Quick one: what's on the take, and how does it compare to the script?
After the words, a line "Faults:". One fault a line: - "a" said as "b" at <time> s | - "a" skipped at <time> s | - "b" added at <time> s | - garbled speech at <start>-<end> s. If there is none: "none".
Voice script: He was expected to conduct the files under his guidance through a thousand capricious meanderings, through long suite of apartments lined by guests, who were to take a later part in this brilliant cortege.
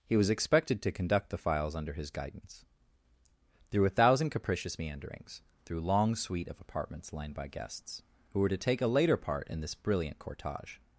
He was expected to conduct the files under his guidance through a thousand capricious meanderings, through long suite of apartments lined by guests, who were to take a later part in this brilliant cortege.
Faults:
none